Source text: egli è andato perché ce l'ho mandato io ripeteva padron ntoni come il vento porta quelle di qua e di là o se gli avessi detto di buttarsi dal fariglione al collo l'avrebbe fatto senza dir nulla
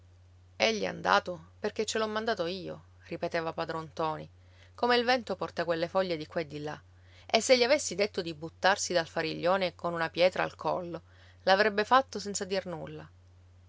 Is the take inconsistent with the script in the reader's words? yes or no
yes